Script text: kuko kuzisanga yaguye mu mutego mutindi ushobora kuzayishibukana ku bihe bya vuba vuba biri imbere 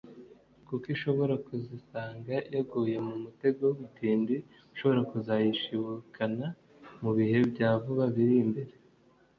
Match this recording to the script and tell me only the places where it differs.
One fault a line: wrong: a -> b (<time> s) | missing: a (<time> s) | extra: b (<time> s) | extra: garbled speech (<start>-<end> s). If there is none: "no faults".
extra: ishobora (0.9 s)
wrong: ku -> mu (7.0 s)
missing: vuba (8.1 s)